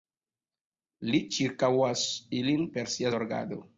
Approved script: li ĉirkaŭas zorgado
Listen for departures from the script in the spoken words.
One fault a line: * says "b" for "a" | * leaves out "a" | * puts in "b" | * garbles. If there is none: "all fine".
* puts in "ilin per sia"